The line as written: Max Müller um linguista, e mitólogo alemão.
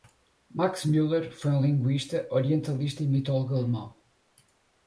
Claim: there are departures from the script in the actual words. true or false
true